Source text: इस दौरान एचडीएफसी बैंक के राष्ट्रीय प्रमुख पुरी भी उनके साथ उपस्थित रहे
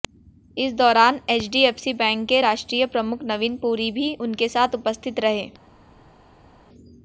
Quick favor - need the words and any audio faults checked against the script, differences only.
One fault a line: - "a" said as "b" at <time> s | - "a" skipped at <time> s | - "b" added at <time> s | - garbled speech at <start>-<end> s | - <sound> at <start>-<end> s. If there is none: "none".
- "नवीन" added at 3.3 s